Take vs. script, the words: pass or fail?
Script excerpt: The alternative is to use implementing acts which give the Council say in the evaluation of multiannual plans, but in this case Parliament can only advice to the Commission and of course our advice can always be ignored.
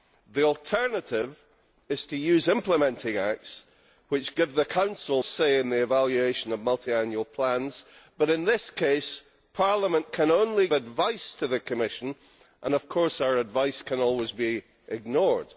pass